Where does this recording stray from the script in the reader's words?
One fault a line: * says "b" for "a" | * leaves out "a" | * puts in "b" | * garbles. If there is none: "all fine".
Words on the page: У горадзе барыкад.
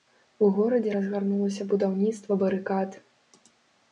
* puts in "разгарнулася будаўніцтва"